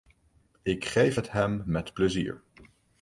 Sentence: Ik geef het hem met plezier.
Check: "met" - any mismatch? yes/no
no